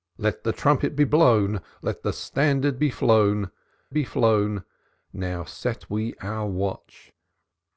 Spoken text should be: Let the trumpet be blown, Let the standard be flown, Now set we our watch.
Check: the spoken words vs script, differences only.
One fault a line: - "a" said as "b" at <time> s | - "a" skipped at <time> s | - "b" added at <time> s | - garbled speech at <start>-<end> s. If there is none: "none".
- "be flown" added at 3.9 s